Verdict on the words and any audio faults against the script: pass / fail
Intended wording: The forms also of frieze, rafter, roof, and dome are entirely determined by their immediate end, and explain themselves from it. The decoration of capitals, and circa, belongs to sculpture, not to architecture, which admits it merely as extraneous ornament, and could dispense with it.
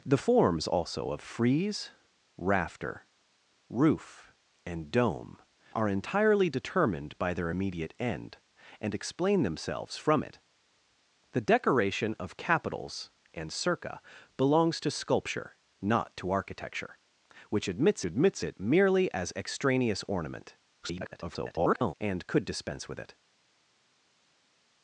fail